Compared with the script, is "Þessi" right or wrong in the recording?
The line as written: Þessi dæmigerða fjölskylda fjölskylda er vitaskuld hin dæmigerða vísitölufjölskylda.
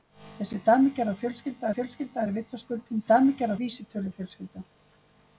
right